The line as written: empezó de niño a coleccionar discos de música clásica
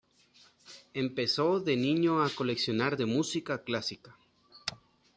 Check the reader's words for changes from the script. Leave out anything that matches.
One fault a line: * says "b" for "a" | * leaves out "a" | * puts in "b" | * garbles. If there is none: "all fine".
* leaves out "discos"